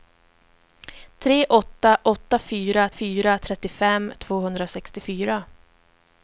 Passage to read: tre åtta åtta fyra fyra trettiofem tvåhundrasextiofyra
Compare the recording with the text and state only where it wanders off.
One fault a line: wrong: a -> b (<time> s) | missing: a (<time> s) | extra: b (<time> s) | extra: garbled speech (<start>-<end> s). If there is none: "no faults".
no faults